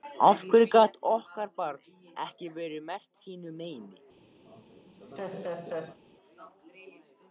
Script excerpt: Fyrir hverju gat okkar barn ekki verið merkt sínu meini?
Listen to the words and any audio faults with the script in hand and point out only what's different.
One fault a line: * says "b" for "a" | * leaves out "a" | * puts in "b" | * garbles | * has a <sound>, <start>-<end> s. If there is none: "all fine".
* says "Af" for "Fyrir"
* has a laugh, 4.4-6.0 s